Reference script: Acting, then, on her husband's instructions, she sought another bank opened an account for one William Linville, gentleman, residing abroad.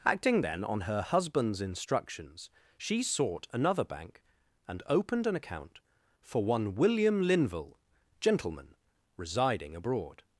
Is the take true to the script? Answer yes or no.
no